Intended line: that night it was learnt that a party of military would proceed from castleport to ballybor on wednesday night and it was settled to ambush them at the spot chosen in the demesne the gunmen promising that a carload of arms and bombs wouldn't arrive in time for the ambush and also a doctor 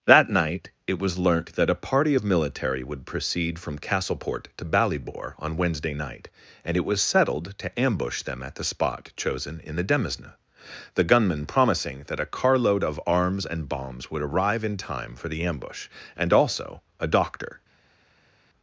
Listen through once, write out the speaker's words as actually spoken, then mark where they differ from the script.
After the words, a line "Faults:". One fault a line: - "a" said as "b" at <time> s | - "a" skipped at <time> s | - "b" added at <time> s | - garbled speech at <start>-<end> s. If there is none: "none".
that night it was learnt that a party of military would proceed from castleport to ballybor on wednesday night and it was settled to ambush them at the spot chosen in the demesne the gunmen promising that a carload of arms and bombs would arrive in time for the ambush and also a doctor
Faults:
- "wouldn't" said as "would" at 14.1 s